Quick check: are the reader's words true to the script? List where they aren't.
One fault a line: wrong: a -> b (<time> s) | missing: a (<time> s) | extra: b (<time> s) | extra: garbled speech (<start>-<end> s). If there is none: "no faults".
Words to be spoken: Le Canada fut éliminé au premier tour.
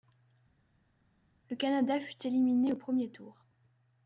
no faults